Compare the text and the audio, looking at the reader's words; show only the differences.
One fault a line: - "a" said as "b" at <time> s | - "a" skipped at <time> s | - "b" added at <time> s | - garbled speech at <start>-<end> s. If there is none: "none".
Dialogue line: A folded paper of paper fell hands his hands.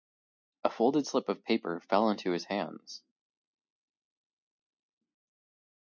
- "paper" said as "slip" at 1.0 s
- "hands" said as "into" at 2.1 s